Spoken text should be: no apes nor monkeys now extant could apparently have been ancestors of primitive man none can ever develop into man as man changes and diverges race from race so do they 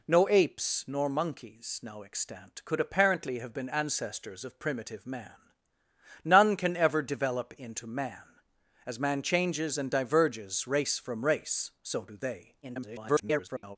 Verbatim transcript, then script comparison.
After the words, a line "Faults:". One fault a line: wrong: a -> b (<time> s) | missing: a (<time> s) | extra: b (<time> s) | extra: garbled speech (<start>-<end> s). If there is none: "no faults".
no apes nor monkeys now extant could apparently have been ancestors of primitive man none can ever develop into man as man changes and diverges race from race so do they [garbled]
Faults:
extra: garbled speech (12.6-13.8 s)